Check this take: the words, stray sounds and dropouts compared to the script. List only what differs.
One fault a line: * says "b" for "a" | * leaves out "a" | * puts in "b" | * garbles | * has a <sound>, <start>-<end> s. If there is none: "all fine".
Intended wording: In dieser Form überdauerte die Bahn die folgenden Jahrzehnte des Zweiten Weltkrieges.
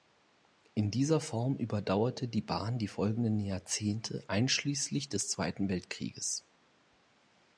* puts in "einschließlich"